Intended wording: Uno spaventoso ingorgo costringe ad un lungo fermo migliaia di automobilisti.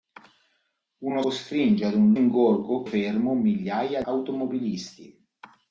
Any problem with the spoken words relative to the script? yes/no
yes